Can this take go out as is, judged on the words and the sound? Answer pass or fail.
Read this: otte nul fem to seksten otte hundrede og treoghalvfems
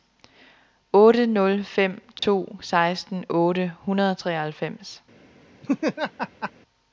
fail